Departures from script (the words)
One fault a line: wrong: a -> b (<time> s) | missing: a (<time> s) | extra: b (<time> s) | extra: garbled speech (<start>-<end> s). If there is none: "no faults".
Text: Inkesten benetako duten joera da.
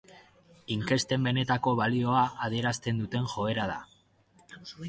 extra: balioa adierazten (1.8 s)